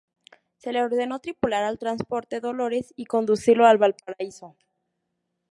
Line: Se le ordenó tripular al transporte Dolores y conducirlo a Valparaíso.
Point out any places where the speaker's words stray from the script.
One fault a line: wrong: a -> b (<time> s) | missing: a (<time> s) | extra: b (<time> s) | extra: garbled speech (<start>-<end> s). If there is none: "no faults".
no faults